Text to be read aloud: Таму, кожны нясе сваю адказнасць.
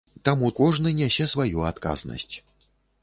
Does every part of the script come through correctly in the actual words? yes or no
yes